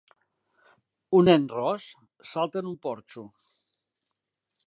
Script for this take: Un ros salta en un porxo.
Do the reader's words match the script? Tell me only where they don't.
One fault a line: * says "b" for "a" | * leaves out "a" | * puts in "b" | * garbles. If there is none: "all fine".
* puts in "nen"